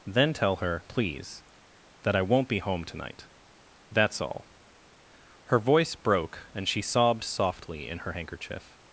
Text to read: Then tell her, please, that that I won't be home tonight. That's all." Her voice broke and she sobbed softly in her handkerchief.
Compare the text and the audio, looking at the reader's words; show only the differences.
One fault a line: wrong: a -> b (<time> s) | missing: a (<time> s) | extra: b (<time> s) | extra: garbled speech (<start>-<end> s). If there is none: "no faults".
missing: that (2.1 s)